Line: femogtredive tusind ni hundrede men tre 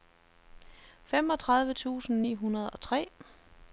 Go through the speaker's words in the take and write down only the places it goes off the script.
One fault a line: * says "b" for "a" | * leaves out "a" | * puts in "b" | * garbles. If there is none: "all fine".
* says "og" for "men"